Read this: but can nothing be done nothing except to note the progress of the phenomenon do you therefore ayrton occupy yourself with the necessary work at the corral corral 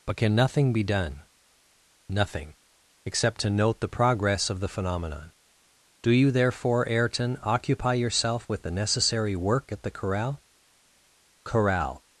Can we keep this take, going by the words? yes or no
yes